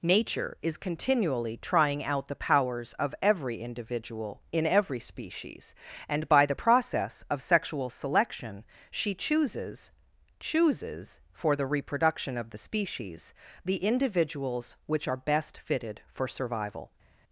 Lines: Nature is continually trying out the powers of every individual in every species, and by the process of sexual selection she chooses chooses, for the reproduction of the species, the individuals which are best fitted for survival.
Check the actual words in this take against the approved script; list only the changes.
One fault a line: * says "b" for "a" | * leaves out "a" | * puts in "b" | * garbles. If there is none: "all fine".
all fine